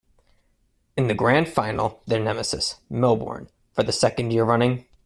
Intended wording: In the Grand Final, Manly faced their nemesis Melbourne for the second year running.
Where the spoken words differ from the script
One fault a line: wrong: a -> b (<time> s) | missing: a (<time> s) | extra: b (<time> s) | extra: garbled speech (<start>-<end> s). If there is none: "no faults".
missing: Manly faced (2.0 s)